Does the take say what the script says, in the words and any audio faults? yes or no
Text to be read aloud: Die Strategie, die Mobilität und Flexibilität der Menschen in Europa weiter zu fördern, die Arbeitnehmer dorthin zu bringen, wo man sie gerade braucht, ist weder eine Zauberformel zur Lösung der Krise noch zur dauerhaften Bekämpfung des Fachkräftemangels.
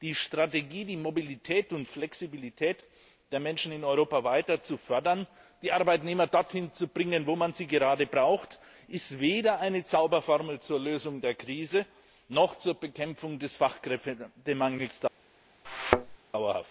no